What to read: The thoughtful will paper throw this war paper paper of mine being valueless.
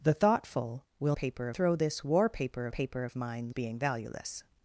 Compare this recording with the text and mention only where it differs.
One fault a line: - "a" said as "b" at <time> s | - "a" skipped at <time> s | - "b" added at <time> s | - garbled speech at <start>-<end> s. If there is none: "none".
none